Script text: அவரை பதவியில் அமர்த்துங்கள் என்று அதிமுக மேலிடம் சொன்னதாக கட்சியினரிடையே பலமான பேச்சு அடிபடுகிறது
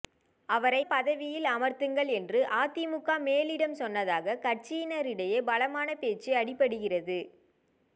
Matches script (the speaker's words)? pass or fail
pass